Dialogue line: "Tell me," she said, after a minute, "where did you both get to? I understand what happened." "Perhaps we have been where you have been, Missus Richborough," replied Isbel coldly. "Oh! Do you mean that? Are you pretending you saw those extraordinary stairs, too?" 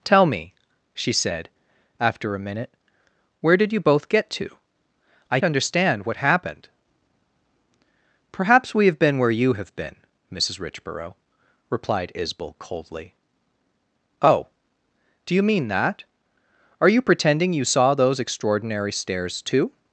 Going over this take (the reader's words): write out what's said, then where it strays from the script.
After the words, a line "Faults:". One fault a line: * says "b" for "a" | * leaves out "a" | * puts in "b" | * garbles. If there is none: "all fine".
"Tell me," she said, after a minute, "where did you both get to? I understand what happened." "Perhaps we have been where you have been, Missus Richborough," replied Isbel coldly. "Oh! Do you mean that? Are you pretending you saw those extraordinary stairs, too?"
Faults:
all fine